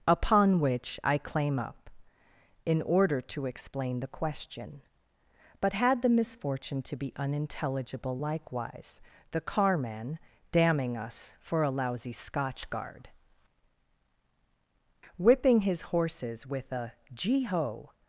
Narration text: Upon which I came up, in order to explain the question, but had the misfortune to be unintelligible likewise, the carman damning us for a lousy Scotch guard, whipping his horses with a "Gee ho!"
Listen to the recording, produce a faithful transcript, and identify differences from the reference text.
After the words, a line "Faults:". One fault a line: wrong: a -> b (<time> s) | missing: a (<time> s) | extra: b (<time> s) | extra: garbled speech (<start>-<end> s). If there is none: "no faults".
Upon which I claim up, in order to explain the question, but had the misfortune to be unintelligible likewise, the carman damning us for a lousy Scotch guard, whipping his horses with a "Gee ho!"
Faults:
wrong: came -> claim (1.2 s)